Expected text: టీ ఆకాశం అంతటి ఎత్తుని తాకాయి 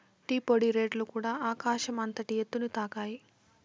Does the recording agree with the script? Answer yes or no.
no